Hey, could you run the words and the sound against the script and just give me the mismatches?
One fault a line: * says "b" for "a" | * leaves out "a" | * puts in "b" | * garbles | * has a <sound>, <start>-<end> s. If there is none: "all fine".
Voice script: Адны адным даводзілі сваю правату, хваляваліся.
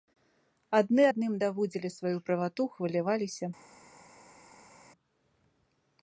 all fine